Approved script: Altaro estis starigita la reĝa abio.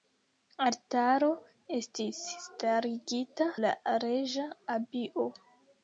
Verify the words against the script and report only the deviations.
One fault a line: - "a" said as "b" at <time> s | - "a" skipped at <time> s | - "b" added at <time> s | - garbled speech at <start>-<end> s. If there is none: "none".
none